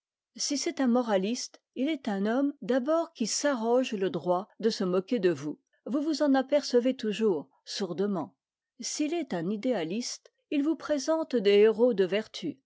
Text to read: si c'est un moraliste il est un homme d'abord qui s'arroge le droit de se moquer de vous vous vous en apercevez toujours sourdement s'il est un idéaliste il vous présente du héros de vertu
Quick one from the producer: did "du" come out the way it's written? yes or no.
no